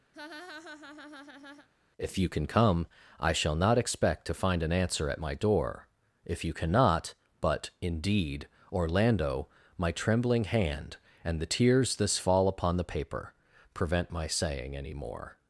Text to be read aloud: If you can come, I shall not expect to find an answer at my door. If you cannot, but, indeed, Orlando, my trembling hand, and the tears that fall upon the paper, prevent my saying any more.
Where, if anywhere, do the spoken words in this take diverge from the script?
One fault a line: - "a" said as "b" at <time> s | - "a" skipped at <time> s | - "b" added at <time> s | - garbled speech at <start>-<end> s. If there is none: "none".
- "that" said as "this" at 12.0 s